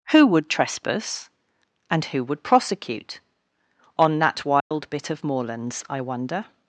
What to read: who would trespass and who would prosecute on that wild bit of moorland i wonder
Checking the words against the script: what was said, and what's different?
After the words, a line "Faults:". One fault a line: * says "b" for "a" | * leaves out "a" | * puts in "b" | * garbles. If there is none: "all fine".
who would trespass and who would prosecute on that wild bit of moorlands i wonder
Faults:
* says "moorlands" for "moorland"